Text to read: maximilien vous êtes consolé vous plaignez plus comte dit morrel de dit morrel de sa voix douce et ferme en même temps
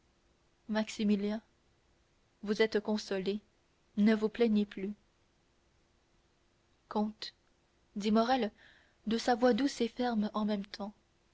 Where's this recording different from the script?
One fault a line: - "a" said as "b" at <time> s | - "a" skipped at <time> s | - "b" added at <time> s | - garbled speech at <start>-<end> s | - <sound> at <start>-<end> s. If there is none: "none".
- "ne" added at 4.0 s
- "dit morrel de" skipped at 9.2 s